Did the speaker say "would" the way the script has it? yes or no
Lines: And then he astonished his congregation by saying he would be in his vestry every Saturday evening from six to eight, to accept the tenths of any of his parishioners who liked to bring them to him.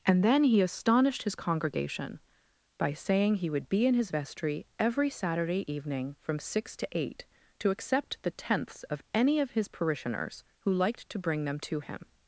yes